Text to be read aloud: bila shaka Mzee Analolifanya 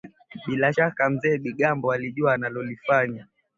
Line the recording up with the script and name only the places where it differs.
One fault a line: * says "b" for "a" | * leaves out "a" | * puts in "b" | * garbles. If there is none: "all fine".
* puts in "Bigambo alijua"